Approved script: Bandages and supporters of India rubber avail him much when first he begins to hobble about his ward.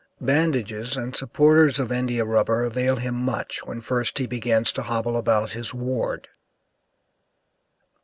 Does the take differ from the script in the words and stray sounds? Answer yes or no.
no